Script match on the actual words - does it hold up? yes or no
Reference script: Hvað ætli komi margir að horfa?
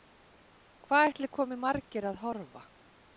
yes